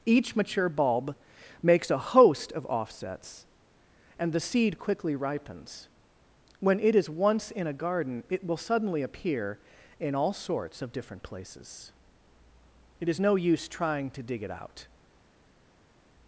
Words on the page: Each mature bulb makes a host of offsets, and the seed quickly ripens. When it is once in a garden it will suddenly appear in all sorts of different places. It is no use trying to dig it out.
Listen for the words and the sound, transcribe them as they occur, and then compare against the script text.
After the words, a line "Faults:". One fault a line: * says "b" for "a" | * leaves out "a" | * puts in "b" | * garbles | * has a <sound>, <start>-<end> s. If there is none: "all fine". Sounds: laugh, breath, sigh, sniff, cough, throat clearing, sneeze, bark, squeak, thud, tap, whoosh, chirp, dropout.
Each mature bulb makes a host of offsets, and the seed quickly ripens. When it is once in a garden it will suddenly appear in all sorts of different places. It is no use trying to dig it out.
Faults:
all fine